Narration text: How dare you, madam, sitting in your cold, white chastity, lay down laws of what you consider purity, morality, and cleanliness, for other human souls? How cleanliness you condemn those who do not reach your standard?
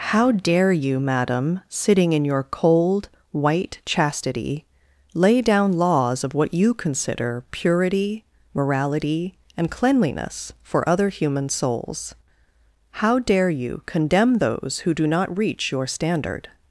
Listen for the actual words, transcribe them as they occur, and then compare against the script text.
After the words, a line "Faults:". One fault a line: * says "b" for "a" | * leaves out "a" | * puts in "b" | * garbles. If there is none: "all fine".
How dare you, madam, sitting in your cold, white chastity, lay down laws of what you consider purity, morality, and cleanliness, for other human souls? How dare you condemn those who do not reach your standard?
Faults:
* says "dare" for "cleanliness"